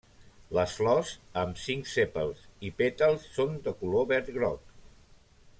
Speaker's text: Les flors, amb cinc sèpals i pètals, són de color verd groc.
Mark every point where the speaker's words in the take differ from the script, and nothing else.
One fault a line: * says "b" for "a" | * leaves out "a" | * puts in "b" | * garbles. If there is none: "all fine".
all fine